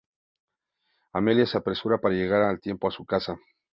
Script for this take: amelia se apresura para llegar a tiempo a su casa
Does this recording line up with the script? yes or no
yes